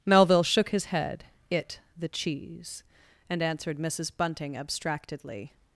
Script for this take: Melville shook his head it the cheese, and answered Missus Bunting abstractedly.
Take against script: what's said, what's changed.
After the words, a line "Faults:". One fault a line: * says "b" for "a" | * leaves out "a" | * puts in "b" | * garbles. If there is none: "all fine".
Melville shook his head it the cheese, and answered Missus Bunting abstractedly.
Faults:
all fine